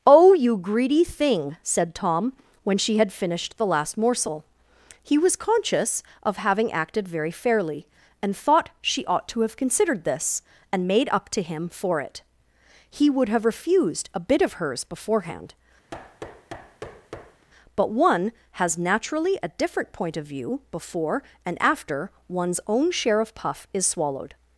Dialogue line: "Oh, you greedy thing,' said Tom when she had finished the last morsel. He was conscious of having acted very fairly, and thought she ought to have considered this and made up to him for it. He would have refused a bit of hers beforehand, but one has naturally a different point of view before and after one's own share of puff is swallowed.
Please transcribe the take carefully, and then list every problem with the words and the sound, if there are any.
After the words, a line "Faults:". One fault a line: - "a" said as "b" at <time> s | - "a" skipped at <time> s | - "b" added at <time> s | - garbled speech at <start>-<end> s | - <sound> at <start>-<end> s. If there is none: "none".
"Oh, you greedy thing,' said Tom when she had finished the last morsel. He was conscious of having acted very fairly, and thought she ought to have considered this and made up to him for it. He would have refused a bit of hers beforehand, but one has naturally a different point of view before and after one's own share of puff is swallowed.
Faults:
- thud at 15.9-17.5 s